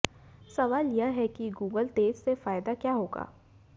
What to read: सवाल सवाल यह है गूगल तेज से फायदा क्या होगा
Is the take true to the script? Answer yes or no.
no